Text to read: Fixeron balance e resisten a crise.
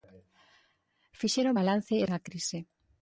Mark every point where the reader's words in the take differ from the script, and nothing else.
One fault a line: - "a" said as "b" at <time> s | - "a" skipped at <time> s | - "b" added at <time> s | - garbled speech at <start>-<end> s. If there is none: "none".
- "resisten" skipped at 2.1 s